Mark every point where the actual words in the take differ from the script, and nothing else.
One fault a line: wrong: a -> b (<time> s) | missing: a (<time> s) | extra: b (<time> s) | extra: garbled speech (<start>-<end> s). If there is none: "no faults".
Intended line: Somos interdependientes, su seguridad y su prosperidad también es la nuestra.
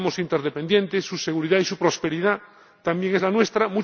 no faults